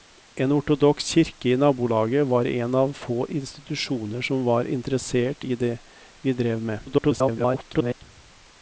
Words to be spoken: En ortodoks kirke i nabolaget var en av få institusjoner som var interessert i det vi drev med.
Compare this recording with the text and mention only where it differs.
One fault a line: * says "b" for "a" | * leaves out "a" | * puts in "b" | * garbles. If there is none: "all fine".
* garbles